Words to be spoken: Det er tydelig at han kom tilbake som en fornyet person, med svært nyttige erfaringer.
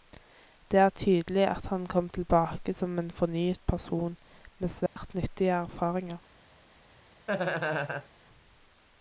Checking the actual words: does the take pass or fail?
pass